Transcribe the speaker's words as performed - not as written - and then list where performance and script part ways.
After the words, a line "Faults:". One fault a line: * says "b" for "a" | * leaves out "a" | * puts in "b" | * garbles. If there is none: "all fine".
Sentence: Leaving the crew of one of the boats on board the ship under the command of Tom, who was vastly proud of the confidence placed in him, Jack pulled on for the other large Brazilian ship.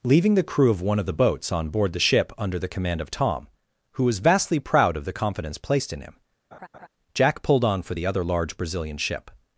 Leaving the crew of one of the boats on board the ship under the command of Tom, who was vastly proud of the confidence placed in him, Jack pulled on for the other large Brazilian ship.
Faults:
all fine